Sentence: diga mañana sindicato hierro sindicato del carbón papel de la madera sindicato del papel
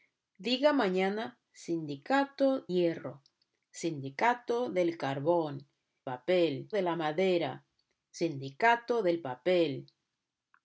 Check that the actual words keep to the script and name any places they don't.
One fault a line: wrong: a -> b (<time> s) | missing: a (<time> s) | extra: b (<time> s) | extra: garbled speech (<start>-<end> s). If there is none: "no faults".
no faults